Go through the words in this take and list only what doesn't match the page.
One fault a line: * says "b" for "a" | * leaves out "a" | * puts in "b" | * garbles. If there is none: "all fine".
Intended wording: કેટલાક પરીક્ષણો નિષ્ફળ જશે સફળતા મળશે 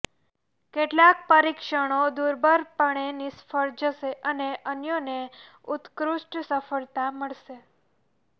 * puts in "દુર્બળપણે"
* puts in "અને અન્યોને ઉત્કૃષ્ટ"